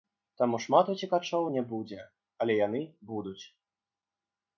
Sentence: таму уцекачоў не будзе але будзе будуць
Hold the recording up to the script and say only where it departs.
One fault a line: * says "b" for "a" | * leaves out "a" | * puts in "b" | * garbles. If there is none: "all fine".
* puts in "шмат"
* says "яны" for "будзе"